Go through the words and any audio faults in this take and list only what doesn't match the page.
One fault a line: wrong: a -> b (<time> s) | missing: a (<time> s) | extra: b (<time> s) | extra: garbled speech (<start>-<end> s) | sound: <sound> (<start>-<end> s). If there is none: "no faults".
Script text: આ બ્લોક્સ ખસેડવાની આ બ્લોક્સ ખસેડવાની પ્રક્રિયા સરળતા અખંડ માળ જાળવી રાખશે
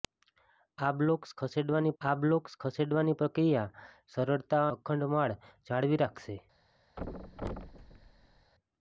sound: thud (7.0-8.5 s)